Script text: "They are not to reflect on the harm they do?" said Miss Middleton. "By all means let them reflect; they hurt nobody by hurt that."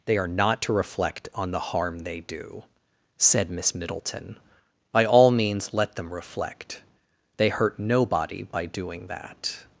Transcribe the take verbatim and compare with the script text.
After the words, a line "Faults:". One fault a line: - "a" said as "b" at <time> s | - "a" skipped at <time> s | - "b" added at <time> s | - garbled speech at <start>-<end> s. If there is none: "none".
"They are not to reflect on the harm they do?" said Miss Middleton. "By all means let them reflect; they hurt nobody by doing that."
Faults:
- "hurt" said as "doing" at 8.7 s